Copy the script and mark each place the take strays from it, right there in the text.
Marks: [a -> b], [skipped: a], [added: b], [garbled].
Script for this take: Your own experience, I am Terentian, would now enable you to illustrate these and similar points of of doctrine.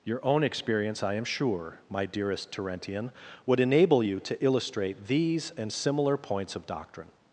Your own experience, I am [added: sure my dearest] Terentian, would [skipped: now] enable you to illustrate these and similar points of [skipped: of] doctrine.